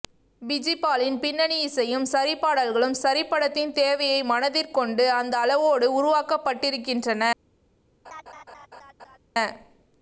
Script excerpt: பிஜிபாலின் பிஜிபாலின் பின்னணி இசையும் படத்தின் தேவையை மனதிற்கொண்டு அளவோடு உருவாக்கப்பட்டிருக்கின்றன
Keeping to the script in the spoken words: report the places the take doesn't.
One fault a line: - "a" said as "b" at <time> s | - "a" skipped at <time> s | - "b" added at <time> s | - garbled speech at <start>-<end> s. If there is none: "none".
- "பிஜிபாலின்" skipped at 1.2 s
- "சரி பாடல்களும் சரி" added at 2.1 s
- "அந்த" added at 5.1 s